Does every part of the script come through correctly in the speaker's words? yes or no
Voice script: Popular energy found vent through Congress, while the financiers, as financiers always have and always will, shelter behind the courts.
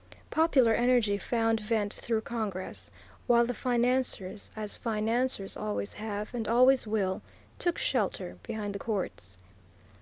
no